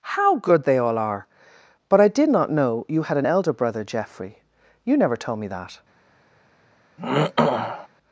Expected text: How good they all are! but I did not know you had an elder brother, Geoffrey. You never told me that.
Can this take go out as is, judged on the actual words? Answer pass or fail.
pass